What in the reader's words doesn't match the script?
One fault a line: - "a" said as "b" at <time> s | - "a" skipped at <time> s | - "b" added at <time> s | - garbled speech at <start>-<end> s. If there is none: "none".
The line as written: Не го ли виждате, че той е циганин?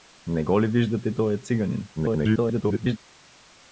- "че" skipped at 1.1 s
- garbled speech at 2.0-3.0 s